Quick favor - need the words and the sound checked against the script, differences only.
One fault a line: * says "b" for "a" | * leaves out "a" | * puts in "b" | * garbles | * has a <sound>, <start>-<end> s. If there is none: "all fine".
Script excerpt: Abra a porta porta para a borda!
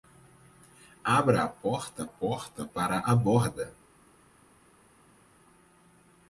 all fine